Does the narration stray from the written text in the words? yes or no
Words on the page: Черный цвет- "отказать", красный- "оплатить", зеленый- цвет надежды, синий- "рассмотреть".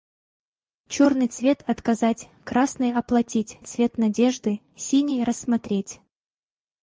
yes